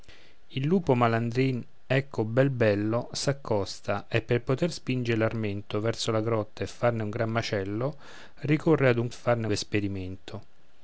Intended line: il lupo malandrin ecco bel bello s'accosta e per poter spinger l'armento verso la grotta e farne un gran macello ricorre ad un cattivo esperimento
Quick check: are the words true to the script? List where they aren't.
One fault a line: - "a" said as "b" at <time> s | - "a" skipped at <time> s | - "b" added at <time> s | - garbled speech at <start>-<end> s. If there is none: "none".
- "cattivo" said as "farne" at 9.1 s